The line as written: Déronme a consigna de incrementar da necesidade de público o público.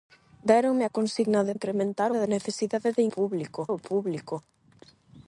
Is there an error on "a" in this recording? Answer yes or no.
no